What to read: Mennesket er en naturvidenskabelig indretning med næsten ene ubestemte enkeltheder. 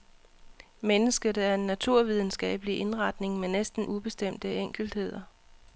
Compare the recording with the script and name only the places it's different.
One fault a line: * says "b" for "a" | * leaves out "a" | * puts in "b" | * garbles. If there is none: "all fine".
* leaves out "ene"